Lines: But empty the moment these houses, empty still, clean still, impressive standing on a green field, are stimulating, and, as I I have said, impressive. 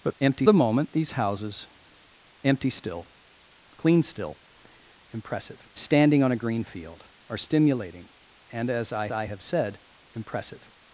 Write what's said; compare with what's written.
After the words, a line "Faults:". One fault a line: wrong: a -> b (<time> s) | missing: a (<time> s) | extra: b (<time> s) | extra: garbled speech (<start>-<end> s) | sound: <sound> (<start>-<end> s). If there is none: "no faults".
But empty the moment these houses, empty still, clean still, impressive standing on a green field, are stimulating, and, as I I have said, impressive.
Faults:
no faults